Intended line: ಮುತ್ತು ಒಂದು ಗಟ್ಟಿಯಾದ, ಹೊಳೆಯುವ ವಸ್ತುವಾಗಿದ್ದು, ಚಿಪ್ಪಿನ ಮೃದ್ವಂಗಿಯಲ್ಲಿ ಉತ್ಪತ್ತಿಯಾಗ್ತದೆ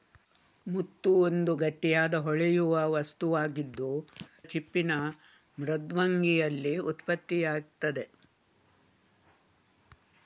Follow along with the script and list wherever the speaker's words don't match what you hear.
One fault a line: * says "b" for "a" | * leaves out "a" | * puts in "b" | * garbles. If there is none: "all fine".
all fine